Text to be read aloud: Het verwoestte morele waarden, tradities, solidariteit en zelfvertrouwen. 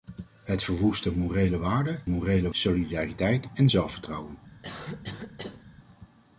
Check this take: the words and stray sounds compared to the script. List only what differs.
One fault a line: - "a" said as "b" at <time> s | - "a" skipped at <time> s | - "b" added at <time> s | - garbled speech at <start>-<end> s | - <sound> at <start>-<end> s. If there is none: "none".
- "tradities" said as "morele" at 2.1 s
- cough at 4.6-5.6 s